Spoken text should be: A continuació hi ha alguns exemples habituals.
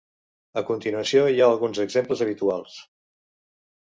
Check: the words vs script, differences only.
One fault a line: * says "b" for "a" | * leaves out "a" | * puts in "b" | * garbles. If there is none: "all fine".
all fine